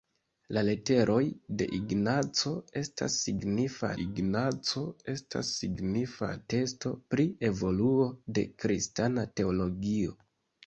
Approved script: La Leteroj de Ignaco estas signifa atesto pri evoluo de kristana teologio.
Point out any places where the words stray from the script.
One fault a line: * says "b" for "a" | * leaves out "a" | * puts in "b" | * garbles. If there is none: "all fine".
* puts in "Ignaco estas signifa"